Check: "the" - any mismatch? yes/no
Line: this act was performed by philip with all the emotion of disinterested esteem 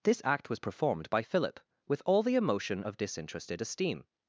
no